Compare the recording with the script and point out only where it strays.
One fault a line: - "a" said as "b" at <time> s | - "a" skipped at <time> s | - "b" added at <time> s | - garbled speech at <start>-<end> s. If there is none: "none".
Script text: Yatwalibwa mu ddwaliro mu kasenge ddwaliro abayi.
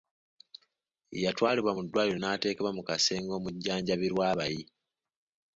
- "n'ateekebwa" added at 2.2 s
- "ddwaliro" said as "omujjanjabirwa" at 3.4 s